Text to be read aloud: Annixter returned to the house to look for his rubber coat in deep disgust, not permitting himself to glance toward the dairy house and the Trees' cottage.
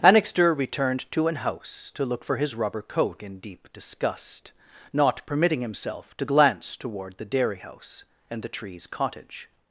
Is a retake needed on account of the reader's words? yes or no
yes